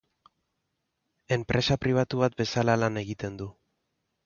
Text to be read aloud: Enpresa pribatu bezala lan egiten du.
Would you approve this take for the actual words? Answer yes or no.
no